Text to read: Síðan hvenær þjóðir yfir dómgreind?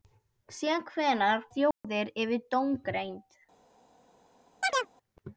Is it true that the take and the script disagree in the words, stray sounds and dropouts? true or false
true